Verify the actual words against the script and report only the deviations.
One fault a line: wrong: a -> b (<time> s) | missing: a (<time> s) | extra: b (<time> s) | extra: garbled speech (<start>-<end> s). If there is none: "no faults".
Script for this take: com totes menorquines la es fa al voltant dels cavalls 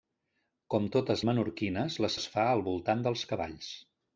no faults